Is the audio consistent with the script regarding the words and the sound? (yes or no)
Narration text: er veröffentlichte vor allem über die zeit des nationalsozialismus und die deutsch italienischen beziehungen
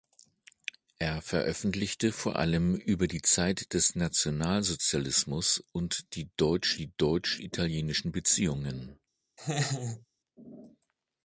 no